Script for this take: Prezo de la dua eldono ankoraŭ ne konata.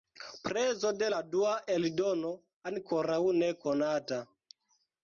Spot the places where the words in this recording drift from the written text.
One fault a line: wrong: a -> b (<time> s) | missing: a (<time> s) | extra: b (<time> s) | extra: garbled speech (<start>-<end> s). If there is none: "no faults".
no faults